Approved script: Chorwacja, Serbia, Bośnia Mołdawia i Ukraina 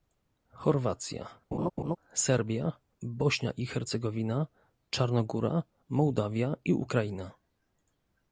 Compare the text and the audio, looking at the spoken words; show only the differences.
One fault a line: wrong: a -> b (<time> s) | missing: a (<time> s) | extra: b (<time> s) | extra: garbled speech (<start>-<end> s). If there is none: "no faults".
extra: i Hercegowina Czarnogóra (3.5 s)